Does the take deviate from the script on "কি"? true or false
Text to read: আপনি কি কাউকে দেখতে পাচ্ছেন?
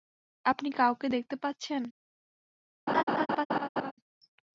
true